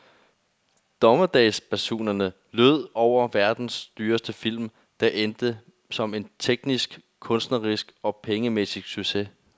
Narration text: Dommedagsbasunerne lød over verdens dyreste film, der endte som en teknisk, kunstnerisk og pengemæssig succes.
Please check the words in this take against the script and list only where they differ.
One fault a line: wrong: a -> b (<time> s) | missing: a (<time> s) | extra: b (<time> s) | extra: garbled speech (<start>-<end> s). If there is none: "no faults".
no faults